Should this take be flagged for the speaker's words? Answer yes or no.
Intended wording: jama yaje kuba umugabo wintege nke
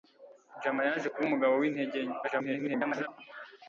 yes